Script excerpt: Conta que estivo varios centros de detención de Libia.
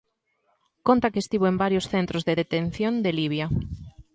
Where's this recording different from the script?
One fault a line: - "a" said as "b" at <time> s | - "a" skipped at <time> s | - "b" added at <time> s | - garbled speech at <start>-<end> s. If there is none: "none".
- "en" added at 1.5 s